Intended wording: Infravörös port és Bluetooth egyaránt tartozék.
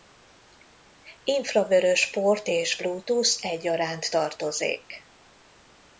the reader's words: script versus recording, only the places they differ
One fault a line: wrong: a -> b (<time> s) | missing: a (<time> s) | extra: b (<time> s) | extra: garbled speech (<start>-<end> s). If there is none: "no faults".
no faults